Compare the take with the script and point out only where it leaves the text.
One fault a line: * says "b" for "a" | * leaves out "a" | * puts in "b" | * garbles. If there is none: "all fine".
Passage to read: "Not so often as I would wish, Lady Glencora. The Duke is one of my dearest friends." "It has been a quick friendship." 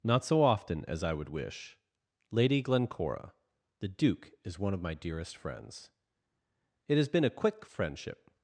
all fine